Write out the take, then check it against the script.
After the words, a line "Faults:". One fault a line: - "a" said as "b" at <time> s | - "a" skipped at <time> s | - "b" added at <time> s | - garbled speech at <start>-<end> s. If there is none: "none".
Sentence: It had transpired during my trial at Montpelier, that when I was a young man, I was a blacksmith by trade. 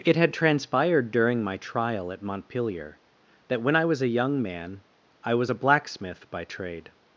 It had transpired during my trial at Montpelier, that when I was a young man, I was a blacksmith by trade.
Faults:
none